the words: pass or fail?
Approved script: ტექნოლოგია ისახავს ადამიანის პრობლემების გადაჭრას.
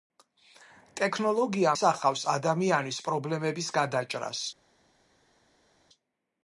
pass